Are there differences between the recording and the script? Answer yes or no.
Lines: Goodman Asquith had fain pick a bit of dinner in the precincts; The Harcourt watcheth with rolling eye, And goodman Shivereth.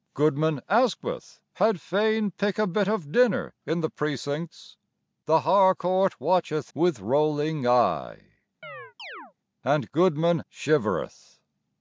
no